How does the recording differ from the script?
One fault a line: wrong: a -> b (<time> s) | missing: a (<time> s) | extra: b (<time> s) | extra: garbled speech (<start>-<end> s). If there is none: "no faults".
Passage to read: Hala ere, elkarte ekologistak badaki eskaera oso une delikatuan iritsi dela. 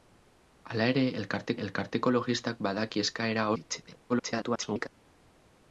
extra: elkarte (1.6 s)
missing: oso une delikatuan (3.5 s)
extra: garbled speech (4.1-4.9 s)